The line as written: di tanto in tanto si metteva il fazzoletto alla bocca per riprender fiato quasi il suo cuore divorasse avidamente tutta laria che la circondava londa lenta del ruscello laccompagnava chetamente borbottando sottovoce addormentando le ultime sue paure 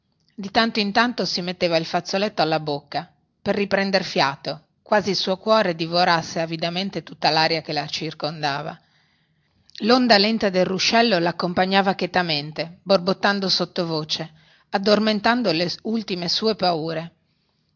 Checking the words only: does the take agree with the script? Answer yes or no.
yes